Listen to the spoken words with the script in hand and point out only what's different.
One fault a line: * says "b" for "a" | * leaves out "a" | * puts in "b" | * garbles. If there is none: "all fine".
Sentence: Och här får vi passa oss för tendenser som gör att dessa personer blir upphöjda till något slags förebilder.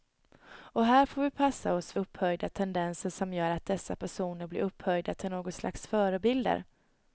* says "upphöjda" for "för"